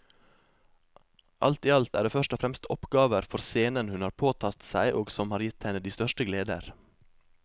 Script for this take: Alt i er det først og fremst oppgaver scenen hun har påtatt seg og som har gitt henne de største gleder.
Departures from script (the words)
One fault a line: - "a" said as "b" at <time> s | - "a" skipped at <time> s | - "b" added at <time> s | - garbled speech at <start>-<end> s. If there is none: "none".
- "alt" added at 1.7 s
- "for" added at 3.3 s